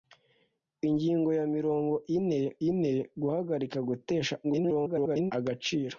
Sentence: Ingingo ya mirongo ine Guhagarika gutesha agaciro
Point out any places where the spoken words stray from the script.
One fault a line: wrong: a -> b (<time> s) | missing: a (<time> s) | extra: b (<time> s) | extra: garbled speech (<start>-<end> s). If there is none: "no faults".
extra: ine (2.7 s)
extra: garbled speech (4.4-5.3 s)